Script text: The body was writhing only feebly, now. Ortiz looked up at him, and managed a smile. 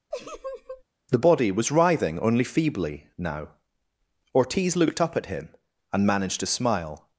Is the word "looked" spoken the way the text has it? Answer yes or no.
yes